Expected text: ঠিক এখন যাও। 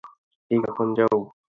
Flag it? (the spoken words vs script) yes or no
no